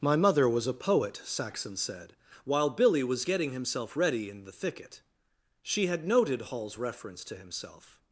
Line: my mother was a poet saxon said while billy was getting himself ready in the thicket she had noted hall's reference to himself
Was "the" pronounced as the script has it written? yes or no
yes